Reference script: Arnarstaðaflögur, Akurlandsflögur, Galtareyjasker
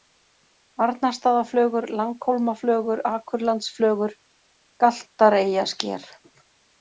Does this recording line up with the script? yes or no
no